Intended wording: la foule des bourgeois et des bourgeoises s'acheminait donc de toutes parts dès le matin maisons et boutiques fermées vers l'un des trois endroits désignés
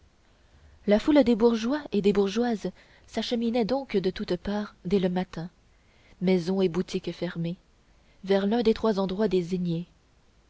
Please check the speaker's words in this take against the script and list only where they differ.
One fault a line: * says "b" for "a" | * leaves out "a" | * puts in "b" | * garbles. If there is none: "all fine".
all fine